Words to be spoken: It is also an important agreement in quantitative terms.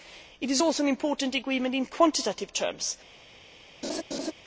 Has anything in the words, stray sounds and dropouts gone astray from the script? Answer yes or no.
yes